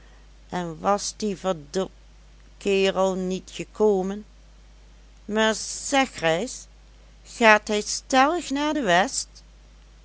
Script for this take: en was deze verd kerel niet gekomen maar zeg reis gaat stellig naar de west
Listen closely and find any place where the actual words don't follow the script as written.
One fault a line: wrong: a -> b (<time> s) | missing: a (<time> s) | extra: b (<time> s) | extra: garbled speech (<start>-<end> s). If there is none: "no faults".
wrong: deze -> die (1.2 s)
extra: hij (7.7 s)